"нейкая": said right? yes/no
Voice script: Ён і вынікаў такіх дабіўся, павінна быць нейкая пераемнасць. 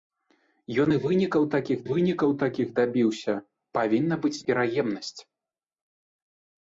no